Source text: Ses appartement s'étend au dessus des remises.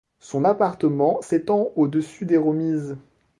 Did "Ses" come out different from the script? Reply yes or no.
yes